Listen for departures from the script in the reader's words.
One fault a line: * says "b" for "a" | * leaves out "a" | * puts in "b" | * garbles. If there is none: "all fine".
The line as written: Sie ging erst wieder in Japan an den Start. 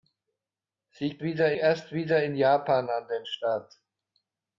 * says "wieder" for "ging"